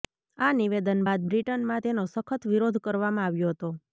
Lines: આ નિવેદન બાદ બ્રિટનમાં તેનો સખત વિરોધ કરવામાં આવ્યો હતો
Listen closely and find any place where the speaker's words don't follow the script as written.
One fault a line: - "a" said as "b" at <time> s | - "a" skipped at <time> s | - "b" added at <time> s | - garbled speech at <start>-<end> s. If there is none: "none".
none